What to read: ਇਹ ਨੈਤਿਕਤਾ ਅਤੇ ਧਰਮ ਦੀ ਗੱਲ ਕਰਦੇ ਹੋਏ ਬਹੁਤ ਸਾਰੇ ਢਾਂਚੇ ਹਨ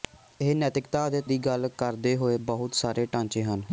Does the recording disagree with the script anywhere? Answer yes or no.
yes